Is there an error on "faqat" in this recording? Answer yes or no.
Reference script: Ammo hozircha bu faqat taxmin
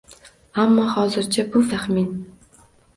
yes